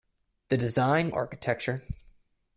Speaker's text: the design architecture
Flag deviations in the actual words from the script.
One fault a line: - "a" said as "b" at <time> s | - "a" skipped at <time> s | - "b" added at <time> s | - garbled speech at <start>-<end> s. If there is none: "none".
none